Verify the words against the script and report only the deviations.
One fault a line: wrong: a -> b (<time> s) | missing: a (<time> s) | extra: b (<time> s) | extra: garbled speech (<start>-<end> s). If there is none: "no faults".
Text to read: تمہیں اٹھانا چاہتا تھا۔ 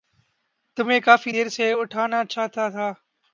extra: کافی دیر سے (1.0 s)